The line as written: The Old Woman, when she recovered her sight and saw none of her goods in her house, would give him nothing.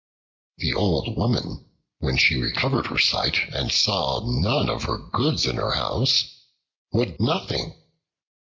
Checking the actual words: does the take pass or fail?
fail